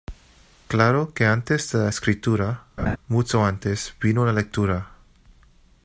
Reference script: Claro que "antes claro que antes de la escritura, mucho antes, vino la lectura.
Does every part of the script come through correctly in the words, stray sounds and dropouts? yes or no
no